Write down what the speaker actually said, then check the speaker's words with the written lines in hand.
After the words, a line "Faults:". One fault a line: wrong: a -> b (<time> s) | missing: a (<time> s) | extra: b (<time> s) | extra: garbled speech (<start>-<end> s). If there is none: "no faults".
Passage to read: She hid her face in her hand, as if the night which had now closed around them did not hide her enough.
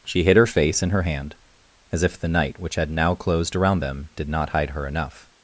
She hid her face in her hand, as if the night which had now closed around them did not hide her enough.
Faults:
no faults